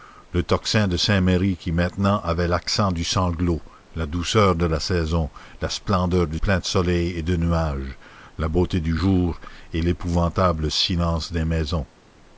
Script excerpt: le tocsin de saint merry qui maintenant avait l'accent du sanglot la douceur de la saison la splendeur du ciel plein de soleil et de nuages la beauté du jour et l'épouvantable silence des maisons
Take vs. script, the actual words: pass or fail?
fail